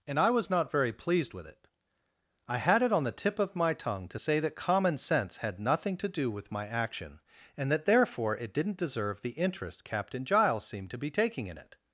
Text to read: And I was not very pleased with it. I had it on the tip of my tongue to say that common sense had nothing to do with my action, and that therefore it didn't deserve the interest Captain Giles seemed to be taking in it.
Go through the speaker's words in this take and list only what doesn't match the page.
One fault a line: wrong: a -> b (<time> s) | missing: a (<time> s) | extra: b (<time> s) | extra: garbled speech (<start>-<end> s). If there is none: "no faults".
no faults